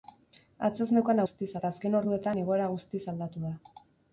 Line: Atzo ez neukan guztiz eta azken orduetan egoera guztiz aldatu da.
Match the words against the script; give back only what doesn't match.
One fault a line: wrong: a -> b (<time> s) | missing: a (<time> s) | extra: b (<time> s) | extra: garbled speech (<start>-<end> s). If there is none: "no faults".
no faults